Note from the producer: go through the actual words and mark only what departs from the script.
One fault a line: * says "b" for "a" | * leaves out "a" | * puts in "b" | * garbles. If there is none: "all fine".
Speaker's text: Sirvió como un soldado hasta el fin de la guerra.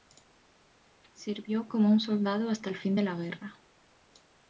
all fine